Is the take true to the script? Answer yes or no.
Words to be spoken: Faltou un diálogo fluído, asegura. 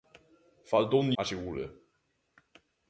no